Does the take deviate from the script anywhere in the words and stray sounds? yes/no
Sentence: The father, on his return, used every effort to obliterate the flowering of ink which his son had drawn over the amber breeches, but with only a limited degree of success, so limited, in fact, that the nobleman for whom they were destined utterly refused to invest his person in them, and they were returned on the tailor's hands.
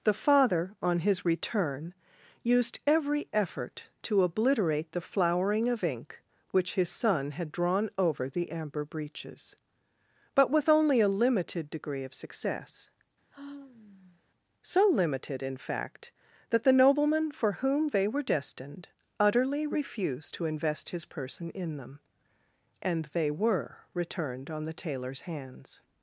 yes